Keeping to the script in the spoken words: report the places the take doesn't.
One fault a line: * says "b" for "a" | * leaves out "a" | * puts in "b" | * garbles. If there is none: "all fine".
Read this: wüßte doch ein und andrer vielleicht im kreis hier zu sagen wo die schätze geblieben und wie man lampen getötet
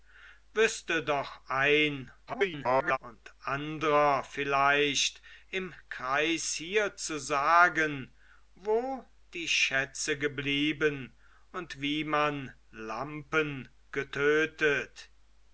* garbles